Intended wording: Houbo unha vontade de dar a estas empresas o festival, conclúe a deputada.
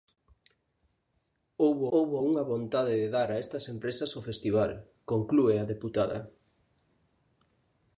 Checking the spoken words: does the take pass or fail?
fail